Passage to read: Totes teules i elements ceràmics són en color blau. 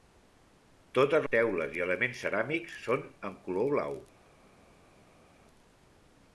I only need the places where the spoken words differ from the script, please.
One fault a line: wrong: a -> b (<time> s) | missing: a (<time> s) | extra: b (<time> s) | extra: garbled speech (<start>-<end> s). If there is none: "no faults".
no faults